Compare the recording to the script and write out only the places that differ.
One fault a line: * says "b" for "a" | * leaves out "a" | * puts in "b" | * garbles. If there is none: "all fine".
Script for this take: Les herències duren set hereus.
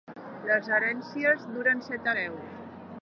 all fine